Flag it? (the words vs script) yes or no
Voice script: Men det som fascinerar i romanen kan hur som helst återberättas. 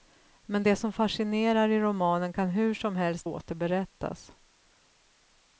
no